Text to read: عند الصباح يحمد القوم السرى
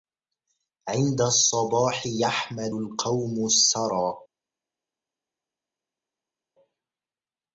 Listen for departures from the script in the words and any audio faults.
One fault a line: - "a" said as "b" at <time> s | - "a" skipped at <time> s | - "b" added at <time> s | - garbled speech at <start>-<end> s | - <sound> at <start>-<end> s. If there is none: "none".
none